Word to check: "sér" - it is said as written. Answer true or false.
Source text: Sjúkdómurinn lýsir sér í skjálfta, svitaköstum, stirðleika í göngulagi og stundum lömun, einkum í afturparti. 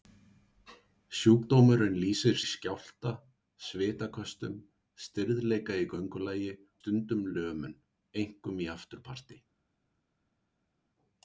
false